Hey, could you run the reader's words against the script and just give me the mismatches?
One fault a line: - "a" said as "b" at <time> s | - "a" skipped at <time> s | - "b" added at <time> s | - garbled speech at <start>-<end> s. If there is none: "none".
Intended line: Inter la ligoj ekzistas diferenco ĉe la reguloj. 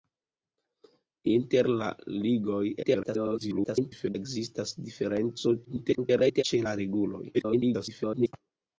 - garbled speech at 2.8-4.2 s
- garbled speech at 5.6-6.4 s
- garbled speech at 7.3-8.3 s